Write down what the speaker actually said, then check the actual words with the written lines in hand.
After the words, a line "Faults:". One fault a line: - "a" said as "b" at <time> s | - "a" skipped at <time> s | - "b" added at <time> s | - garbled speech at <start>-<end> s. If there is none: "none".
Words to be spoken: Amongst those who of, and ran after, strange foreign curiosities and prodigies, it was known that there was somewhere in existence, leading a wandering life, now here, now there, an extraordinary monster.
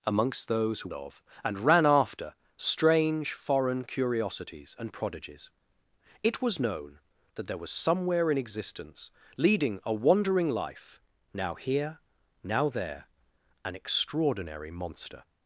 Amongst those who of, and ran after, strange foreign curiosities and prodigies, it was known that there was somewhere in existence, leading a wandering life, now here, now there, an extraordinary monster.
Faults:
none